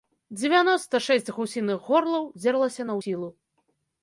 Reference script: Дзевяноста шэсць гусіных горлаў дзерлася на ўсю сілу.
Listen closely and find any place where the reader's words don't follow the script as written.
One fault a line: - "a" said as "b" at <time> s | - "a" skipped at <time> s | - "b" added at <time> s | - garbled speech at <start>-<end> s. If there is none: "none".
- "ўсю" skipped at 3.0 s